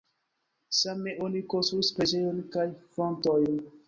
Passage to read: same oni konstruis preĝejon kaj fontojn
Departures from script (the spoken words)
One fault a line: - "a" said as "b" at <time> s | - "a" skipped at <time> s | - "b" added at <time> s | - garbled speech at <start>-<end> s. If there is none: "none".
none